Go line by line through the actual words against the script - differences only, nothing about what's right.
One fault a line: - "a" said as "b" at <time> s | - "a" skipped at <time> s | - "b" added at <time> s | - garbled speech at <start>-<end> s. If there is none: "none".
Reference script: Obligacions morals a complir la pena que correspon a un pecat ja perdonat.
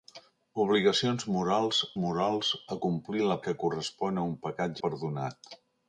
- "morals" added at 2.0 s
- "pena" skipped at 3.4 s
- "ja" skipped at 4.8 s